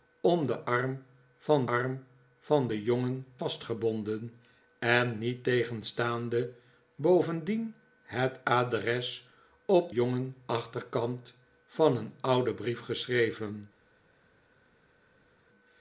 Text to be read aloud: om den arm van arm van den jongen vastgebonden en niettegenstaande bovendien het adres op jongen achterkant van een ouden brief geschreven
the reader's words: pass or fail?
pass